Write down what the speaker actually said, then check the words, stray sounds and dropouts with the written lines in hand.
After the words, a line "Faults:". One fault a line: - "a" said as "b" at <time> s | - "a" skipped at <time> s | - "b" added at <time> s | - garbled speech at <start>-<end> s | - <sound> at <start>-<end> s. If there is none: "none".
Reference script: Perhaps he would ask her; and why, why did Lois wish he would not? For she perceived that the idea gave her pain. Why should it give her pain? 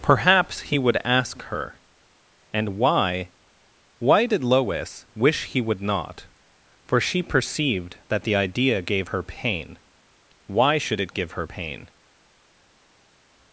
Perhaps he would ask her; and why, why did Lois wish he would not? For she perceived that the idea gave her pain. Why should it give her pain?
Faults:
none